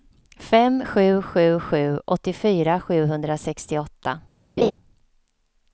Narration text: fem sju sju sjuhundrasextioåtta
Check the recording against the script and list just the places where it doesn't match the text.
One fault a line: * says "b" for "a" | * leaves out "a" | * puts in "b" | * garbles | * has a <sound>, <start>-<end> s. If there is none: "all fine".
* puts in "sju åttiofyra"
* has a laugh, 4.6-4.7 s